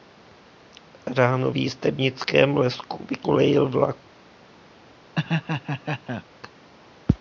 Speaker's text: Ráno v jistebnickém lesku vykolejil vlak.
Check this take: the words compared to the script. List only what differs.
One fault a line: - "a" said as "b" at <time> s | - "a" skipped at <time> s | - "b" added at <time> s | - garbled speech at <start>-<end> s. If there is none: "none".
none